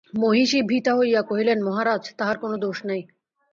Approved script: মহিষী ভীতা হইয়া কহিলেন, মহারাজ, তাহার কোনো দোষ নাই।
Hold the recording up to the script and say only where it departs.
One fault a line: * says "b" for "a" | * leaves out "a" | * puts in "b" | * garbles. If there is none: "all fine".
all fine